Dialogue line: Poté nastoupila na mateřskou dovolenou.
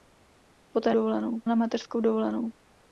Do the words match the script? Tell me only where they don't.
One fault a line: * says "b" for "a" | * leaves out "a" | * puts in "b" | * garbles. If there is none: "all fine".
* says "dovolenou" for "nastoupila"